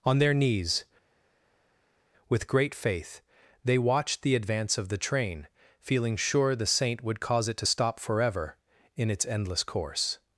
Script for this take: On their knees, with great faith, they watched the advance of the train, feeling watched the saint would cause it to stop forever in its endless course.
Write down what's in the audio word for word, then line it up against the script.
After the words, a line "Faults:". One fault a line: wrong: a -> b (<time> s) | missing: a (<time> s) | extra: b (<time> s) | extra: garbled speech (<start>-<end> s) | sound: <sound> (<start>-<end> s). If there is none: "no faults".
On their knees, with great faith, they watched the advance of the train, feeling sure the saint would cause it to stop forever in its endless course.
Faults:
wrong: watched -> sure (6.1 s)